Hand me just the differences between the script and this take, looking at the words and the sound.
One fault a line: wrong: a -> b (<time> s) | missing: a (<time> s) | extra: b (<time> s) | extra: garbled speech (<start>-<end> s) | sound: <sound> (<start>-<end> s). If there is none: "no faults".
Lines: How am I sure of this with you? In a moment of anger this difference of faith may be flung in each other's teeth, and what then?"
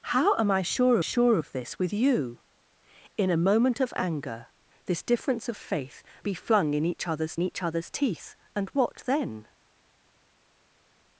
extra: sure (1.0 s)
missing: may (6.0 s)
extra: each other's (7.4 s)